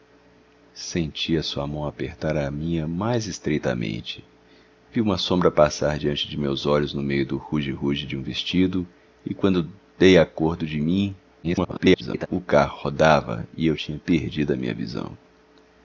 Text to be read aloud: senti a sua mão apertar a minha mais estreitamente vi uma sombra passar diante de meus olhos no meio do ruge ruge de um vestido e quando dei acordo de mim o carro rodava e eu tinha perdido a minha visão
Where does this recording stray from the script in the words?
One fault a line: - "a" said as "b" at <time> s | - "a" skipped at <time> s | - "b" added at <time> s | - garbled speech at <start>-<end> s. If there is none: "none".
- garbled speech at 11.4-12.3 s